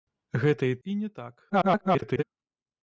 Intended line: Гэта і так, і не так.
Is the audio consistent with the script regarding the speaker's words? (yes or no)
no